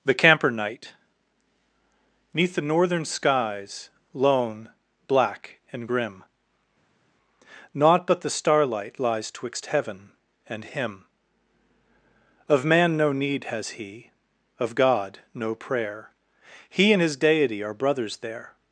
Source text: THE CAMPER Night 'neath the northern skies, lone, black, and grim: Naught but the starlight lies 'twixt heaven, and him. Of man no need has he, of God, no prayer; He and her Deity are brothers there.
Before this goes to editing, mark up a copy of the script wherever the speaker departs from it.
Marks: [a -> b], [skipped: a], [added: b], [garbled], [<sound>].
THE CAMPER Night 'neath the northern skies, lone, black, and grim: Naught but the starlight lies 'twixt heaven, and him. Of man no need has he, of God, no prayer; He and [her -> his] Deity are brothers there.